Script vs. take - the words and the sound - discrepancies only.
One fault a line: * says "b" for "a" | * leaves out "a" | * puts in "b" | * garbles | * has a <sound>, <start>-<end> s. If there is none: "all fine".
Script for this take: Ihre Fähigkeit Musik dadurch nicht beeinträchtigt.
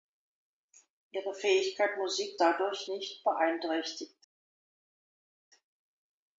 all fine